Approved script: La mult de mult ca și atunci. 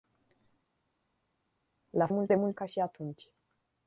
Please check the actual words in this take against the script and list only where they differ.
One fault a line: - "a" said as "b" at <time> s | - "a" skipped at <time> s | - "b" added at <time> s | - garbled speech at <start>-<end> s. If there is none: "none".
none